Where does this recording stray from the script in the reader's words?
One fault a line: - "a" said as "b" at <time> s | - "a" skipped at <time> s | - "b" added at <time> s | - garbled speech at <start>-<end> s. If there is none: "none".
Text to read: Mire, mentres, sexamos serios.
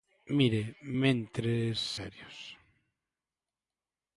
- "sexamos" skipped at 1.8 s